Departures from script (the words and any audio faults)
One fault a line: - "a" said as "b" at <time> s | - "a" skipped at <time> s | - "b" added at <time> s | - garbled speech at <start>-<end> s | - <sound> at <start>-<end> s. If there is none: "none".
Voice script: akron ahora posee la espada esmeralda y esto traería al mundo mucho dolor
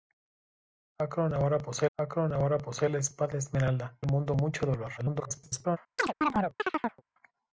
- "akron ahora posee" added at 2.0 s
- "y esto traería" skipped at 4.0 s
- garbled speech at 5.0-5.8 s
- chirp at 6.0-7.0 s